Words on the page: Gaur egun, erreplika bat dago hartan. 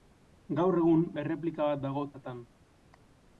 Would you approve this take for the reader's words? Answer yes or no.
yes